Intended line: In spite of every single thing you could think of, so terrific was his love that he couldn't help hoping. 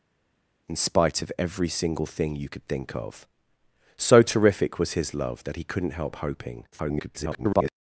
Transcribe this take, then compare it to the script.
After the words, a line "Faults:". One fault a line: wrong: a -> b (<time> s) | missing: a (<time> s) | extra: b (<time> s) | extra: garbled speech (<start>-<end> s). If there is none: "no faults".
In spite of every single thing you could think of, so terrific was his love that he couldn't help hoping. [garbled]
Faults:
extra: garbled speech (6.7-7.7 s)